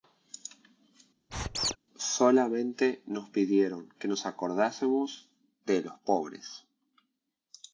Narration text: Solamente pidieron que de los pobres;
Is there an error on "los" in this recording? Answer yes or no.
no